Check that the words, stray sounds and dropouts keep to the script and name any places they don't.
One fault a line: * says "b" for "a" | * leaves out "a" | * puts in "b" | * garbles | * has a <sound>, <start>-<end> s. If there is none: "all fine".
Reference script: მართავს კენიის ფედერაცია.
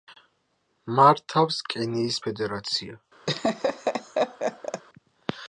* has a laugh, 3.3-4.8 s